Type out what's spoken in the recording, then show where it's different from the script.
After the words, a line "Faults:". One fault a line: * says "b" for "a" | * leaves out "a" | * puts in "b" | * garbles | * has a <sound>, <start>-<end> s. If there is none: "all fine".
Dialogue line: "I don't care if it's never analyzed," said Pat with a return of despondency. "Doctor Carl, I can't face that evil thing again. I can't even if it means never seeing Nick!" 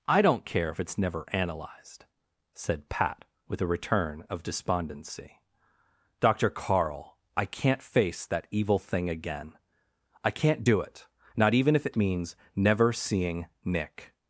"I don't care if it's never analyzed," said Pat with a return of despondency. "Doctor Carl, I can't face that evil thing again. I can't do it, not even if it means never seeing Nick!"
Faults:
* puts in "do it not"